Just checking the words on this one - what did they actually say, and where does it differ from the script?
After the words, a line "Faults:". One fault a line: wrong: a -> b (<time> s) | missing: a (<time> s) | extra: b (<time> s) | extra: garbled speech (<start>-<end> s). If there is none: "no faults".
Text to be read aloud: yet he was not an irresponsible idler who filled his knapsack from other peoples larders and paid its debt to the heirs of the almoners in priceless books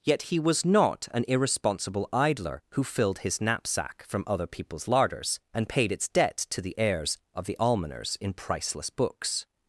yet he was not an irresponsible idler who filled his knapsack from other peoples larders and paid its debt to the heirs of the almoners in priceless books
Faults:
no faults